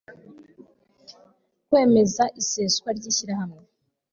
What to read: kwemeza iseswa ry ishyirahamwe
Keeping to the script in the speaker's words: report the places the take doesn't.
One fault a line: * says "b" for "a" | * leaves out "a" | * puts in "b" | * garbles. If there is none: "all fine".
all fine